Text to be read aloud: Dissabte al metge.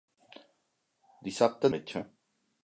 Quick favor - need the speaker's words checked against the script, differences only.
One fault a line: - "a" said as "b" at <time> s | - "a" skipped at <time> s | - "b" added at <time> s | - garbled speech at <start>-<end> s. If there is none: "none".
none